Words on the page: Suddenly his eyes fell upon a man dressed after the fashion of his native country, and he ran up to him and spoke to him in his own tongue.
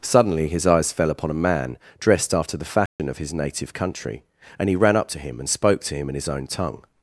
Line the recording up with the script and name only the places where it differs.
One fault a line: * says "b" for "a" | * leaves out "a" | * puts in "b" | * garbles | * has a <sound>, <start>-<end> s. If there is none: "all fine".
* has a dropout, 2.9-3.0 s